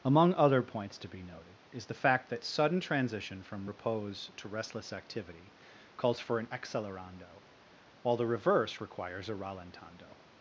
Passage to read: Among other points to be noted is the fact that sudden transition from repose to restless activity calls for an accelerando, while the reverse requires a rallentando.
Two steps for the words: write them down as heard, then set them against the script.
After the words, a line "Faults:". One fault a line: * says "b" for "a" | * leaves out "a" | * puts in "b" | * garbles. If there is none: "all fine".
Among other points to be noted is the fact that sudden transition from repose to restless activity calls for an accelerando, while the reverse requires a rallentando.
Faults:
all fine